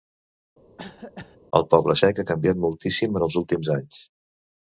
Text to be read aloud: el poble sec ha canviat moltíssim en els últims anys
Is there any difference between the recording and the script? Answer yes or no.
no